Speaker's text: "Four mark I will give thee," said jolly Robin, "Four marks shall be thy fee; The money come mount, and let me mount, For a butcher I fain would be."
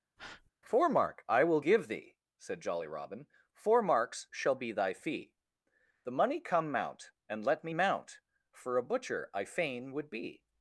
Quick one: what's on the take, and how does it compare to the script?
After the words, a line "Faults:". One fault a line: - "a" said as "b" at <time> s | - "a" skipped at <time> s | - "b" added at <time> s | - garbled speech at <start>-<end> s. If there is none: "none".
"Four mark I will give thee," said jolly Robin, "Four marks shall be thy fee; The money come mount, and let me mount, For a butcher I fain would be."
Faults:
none